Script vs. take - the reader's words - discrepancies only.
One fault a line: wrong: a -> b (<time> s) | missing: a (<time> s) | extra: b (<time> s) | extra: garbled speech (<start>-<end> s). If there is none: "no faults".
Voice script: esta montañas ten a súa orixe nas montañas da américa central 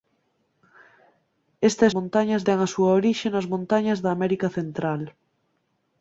no faults